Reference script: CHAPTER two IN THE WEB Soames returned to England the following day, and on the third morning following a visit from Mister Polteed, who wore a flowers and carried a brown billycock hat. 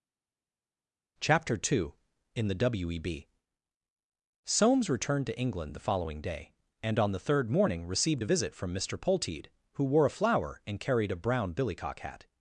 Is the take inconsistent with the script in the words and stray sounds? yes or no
yes